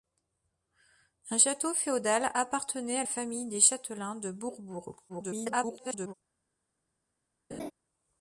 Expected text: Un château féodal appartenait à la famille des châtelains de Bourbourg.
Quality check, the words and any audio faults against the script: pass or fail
fail